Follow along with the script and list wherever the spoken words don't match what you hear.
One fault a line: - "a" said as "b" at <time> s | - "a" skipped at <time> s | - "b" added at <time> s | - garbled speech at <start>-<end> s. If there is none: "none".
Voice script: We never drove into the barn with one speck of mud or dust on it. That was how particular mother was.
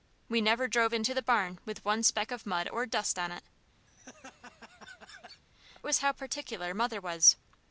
- "That" skipped at 3.4 s